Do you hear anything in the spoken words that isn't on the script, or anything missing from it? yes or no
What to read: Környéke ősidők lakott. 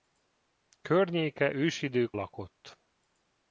no